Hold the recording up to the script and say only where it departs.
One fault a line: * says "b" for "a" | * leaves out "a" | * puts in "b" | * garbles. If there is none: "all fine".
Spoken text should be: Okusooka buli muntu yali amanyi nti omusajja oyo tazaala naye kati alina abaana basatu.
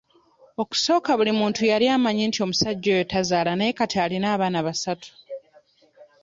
all fine